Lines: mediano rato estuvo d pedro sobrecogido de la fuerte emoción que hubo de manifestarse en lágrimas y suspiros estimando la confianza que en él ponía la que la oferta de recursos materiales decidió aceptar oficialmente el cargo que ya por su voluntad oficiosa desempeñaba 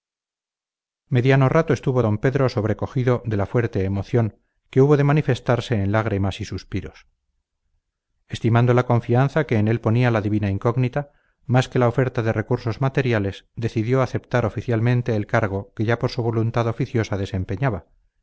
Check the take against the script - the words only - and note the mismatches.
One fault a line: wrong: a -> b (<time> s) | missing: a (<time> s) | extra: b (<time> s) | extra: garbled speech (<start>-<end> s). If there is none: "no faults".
extra: divina incógnita más (10.2 s)